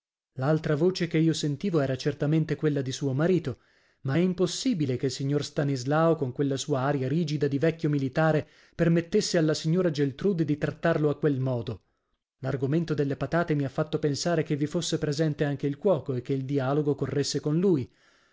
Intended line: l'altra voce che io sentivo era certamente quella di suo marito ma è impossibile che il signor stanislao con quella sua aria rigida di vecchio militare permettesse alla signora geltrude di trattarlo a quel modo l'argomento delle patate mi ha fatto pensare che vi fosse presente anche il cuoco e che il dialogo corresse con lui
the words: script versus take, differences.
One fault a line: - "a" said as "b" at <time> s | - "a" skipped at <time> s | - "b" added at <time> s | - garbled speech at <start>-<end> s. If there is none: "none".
none